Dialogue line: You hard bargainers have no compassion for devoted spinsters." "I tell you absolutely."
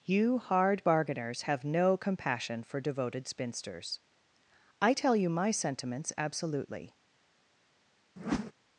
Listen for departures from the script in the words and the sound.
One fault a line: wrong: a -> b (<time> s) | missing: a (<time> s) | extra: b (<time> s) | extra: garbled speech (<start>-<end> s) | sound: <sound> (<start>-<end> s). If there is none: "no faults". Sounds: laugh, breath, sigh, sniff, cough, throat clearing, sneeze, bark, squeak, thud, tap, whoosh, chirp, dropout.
extra: my sentiments (5.3 s)
sound: whoosh (8.2-8.5 s)